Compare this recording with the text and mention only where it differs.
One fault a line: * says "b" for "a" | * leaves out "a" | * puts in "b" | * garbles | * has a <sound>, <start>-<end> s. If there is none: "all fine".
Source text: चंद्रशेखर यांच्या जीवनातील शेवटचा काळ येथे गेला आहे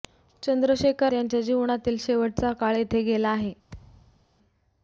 * has a thud, 3.7-4.3 s